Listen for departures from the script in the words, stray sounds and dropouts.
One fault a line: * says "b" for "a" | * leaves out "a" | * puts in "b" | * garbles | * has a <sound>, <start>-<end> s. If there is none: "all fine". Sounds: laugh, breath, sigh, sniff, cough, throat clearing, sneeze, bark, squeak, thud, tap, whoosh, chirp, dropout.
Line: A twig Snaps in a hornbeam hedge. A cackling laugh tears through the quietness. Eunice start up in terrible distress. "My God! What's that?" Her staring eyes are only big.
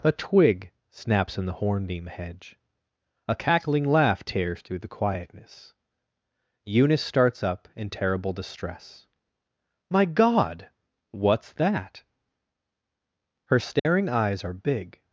* says "the" for "a"
* says "starts" for "start"
* has a dropout, 13.8-13.9 s
* leaves out "only"